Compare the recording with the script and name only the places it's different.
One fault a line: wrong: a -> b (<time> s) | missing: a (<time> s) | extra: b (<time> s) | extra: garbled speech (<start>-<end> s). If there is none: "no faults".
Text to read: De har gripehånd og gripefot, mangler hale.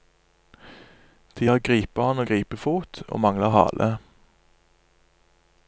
extra: og (3.1 s)